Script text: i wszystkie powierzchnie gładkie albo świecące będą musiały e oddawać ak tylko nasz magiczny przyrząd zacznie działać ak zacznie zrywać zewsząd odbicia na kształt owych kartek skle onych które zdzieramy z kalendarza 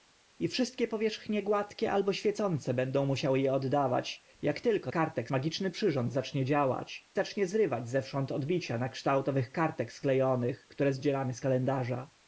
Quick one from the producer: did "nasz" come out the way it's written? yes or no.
no